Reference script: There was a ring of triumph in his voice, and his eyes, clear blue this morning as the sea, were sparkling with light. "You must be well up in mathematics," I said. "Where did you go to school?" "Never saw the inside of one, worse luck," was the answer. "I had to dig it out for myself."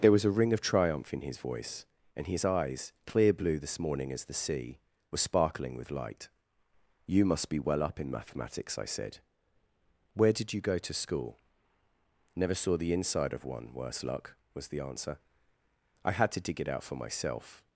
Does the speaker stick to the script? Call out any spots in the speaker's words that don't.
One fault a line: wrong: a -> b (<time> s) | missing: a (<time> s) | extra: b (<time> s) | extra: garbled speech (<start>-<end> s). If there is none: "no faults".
no faults